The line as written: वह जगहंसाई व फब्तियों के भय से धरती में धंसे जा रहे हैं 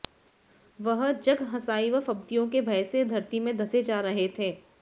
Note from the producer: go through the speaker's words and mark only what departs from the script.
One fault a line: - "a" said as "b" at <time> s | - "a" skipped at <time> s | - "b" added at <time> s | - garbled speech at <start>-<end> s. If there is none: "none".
- "हैं" said as "थे" at 4.4 s